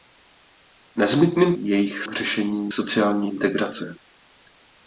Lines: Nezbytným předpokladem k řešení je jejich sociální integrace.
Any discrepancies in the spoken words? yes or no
yes